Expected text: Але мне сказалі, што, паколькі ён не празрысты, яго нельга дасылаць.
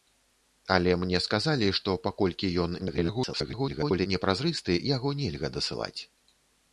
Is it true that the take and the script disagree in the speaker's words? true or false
true